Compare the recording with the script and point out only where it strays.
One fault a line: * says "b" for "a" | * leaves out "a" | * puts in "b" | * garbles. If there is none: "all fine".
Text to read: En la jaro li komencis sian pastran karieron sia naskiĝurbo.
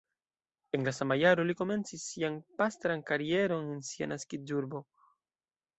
* puts in "sama"
* puts in "en"